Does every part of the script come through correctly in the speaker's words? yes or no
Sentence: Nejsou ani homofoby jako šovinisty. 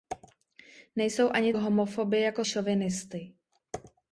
yes